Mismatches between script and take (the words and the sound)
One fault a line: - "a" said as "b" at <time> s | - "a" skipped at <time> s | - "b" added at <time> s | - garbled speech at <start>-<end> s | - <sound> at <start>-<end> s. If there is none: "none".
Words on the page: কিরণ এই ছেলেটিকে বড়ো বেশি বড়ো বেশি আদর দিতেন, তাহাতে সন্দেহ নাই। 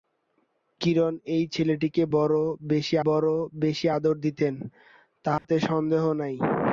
- dropout at 5.4-5.4 s